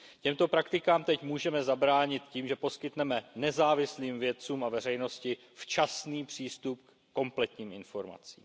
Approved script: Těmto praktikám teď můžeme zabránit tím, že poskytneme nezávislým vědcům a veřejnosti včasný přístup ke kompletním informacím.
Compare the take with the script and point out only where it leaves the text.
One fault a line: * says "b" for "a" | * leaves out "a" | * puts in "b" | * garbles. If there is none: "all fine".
all fine